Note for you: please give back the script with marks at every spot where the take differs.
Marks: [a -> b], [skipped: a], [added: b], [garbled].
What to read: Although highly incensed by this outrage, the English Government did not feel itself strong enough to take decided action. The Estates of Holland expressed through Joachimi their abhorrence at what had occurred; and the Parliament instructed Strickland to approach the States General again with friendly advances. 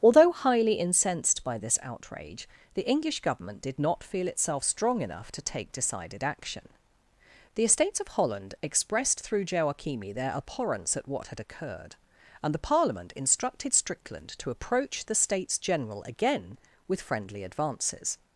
Although highly incensed by this outrage, the English Government did not feel itself strong enough to take decided action. The Estates of Holland expressed through Joachimi their abhorrence at what had occurred; and the Parliament instructed Strickland to approach the States General again with friendly advances.